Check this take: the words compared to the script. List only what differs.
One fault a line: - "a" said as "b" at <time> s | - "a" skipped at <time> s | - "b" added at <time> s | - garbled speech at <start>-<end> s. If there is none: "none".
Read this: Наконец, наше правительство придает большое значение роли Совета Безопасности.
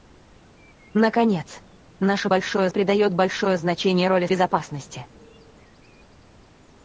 - "правительство" said as "большое" at 2.3 s
- "Совета" skipped at 4.3 s